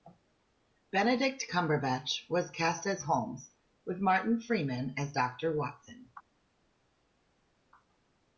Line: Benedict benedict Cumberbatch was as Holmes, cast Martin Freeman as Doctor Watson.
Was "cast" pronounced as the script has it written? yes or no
no